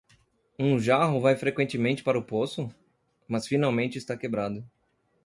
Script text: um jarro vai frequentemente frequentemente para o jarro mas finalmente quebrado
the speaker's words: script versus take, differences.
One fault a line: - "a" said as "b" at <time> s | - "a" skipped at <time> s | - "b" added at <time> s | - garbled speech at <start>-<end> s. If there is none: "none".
- "frequentemente" skipped at 2.0 s
- "jarro" said as "poço" at 2.2 s
- "está" added at 4.0 s